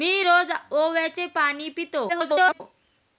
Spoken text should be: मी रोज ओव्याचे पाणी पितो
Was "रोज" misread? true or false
false